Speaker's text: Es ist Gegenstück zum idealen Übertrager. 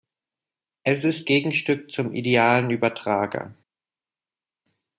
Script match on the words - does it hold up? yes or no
yes